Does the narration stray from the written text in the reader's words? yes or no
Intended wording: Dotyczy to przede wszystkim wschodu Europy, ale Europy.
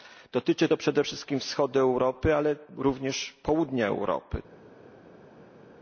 yes